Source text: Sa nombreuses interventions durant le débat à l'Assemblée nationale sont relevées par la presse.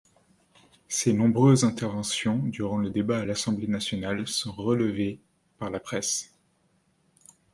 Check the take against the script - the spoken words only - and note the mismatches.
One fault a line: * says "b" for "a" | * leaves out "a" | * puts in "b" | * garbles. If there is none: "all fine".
* says "Ses" for "Sa"